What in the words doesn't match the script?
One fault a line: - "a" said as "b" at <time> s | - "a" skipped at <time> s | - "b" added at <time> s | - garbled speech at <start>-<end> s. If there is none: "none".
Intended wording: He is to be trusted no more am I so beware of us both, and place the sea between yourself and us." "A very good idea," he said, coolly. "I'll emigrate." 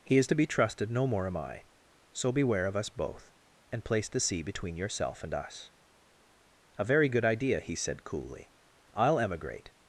none